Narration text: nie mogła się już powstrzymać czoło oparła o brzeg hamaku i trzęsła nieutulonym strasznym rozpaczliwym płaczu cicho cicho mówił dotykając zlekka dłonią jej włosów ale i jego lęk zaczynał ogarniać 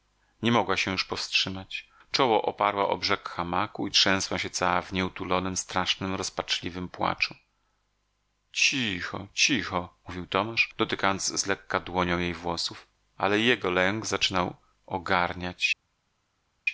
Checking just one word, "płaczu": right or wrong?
right